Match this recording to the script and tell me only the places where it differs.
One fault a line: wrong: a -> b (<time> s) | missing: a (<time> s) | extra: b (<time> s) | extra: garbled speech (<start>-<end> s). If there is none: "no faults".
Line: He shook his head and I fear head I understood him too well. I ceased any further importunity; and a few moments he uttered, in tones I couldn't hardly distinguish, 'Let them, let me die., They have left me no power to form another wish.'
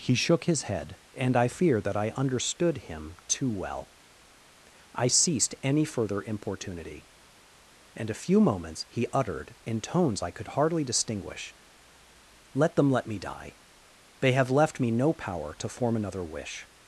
wrong: head -> that (1.8 s)
wrong: couldn't -> could (10.3 s)